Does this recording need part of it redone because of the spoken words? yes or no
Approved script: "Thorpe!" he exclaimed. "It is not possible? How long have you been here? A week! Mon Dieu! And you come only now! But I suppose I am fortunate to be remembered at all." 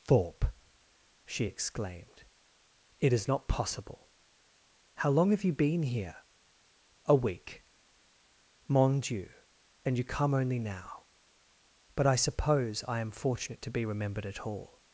yes